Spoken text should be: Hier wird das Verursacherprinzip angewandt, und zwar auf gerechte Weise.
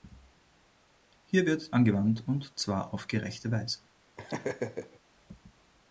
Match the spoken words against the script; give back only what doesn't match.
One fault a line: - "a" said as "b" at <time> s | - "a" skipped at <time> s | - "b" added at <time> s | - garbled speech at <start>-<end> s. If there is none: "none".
- "das Verursacherprinzip" skipped at 1.8 s